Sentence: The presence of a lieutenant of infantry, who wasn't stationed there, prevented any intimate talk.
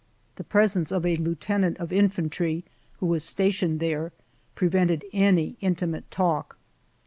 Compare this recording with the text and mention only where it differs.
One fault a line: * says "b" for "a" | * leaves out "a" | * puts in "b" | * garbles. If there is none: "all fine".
* says "was" for "wasn't"